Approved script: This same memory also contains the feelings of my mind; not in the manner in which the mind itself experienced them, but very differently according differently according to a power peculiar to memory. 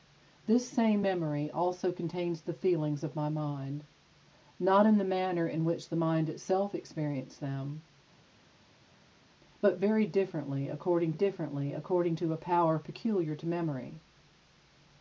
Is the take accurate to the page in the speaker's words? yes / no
yes